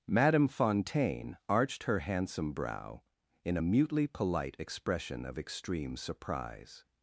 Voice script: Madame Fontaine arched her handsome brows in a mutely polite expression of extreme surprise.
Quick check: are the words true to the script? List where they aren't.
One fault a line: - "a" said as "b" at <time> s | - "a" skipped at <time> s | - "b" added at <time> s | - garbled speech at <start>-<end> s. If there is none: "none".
- "brows" said as "brow" at 2.5 s